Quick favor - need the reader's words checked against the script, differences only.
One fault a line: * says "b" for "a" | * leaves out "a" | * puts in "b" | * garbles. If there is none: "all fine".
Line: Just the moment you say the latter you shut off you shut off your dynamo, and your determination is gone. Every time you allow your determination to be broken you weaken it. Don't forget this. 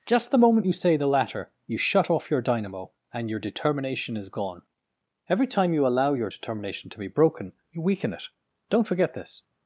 * leaves out "you shut off"